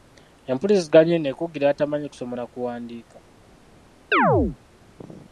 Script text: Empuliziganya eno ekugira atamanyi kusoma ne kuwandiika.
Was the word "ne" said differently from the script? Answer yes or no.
yes